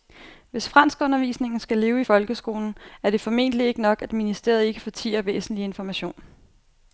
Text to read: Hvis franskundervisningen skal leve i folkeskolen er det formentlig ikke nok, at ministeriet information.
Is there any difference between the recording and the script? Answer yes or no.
yes